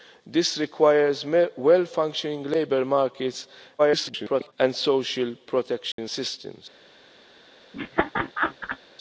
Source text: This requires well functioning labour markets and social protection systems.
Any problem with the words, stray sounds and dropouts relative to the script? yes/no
yes